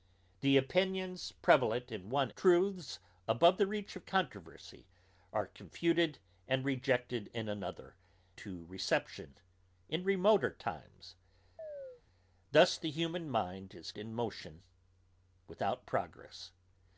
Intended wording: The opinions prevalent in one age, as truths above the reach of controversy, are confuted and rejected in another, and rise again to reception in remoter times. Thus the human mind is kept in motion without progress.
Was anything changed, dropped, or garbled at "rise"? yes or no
yes